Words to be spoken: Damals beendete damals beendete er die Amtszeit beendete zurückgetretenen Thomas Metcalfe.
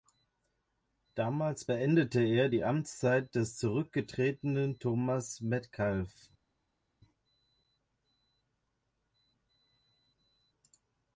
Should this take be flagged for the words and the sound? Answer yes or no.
yes